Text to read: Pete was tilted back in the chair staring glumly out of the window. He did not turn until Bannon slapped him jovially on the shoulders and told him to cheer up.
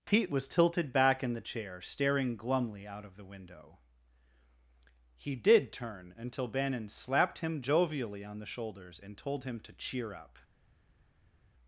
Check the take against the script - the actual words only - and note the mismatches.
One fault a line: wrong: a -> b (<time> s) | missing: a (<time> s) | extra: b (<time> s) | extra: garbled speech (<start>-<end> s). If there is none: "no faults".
missing: not (5.7 s)